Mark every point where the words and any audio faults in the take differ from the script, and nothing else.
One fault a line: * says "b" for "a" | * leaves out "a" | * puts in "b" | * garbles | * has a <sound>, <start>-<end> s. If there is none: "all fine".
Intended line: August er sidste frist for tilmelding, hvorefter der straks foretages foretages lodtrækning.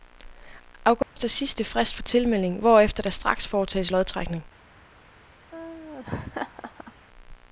* has a dropout, 1.0-1.2 s
* leaves out "foretages"
* has a laugh, 5.5-6.9 s